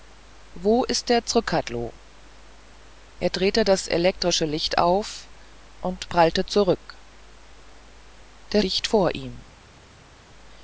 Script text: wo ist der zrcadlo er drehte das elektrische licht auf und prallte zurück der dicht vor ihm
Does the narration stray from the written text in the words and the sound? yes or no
no